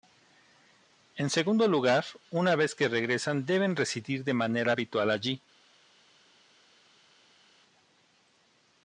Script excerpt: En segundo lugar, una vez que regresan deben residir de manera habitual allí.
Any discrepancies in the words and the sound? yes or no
no